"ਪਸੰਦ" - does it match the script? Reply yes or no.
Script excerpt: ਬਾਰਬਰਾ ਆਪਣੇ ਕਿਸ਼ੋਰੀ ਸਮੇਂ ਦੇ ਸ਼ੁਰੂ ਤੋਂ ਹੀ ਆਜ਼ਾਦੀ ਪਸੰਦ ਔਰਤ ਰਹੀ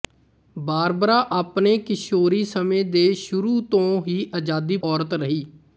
no